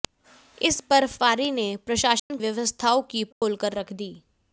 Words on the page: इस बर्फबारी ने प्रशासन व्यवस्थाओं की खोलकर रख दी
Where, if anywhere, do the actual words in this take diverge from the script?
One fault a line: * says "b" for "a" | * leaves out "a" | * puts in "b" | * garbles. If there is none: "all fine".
all fine